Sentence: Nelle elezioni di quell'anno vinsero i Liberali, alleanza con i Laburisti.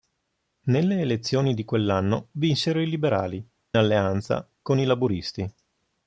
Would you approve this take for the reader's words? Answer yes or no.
yes